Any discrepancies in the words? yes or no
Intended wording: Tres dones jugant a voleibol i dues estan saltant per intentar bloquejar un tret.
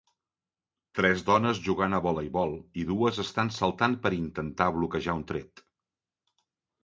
no